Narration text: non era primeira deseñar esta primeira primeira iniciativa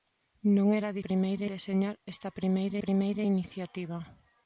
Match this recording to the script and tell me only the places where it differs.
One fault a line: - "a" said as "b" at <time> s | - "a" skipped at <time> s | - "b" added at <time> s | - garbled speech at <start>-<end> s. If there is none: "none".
none